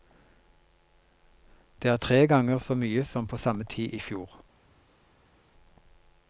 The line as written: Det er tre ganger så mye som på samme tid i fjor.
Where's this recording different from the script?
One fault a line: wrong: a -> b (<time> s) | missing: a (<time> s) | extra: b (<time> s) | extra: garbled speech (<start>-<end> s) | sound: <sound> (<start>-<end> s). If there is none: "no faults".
no faults